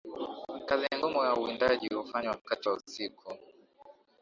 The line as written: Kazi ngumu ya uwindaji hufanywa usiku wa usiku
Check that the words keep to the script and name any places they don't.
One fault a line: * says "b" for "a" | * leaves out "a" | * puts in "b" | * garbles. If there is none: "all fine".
* says "wakati" for "usiku"